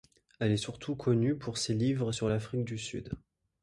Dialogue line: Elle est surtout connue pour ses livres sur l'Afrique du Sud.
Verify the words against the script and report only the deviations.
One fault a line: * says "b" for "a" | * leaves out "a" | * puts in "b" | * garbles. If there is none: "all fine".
all fine